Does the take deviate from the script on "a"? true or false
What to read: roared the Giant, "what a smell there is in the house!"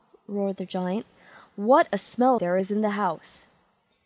false